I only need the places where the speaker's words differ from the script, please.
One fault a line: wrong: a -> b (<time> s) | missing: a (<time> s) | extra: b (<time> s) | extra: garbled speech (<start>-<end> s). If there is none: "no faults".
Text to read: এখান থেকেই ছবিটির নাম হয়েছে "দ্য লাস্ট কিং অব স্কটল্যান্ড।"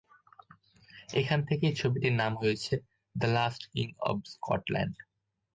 no faults